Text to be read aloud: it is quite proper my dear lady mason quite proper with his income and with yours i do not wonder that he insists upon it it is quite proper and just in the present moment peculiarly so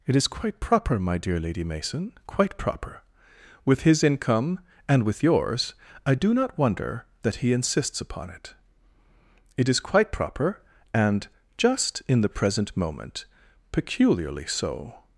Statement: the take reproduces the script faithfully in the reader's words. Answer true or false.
true